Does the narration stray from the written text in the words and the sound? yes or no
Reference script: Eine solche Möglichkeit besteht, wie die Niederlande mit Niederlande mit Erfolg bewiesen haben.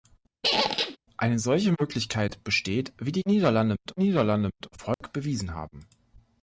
yes